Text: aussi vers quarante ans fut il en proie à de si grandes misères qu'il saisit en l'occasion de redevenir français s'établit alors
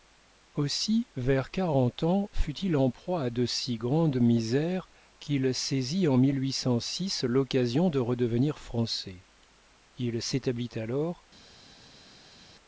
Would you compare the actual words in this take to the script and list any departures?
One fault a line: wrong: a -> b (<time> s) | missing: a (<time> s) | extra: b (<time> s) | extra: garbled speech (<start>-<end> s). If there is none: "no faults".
extra: il (10.0 s)